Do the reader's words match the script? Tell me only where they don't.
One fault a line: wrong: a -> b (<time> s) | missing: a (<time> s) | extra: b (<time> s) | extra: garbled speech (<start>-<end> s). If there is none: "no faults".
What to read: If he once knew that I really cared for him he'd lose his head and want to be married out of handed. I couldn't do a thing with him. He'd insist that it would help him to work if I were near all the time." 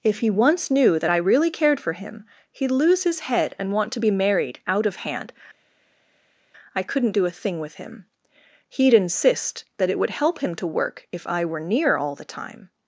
wrong: handed -> hand (5.0 s)